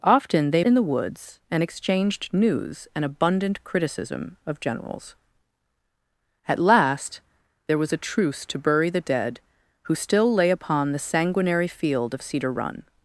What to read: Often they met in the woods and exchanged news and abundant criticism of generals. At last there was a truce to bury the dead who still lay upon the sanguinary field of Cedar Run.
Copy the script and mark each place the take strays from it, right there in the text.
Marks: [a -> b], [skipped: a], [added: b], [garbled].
Often they [skipped: met] in the woods and exchanged news and abundant criticism of generals. At last there was a truce to bury the dead who still lay upon the sanguinary field of Cedar Run.